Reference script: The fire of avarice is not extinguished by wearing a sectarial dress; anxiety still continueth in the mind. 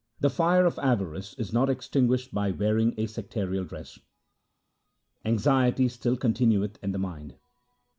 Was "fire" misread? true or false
false